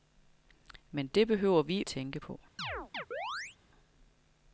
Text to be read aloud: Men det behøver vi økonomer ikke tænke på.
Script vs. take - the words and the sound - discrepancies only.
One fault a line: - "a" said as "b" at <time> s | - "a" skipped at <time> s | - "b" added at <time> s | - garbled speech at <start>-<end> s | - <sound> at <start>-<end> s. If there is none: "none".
- "økonomer ikke" skipped at 1.8 s
- chirp at 2.6-3.6 s